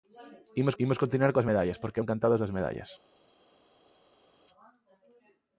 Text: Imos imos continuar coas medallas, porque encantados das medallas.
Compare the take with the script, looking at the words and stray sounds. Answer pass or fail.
pass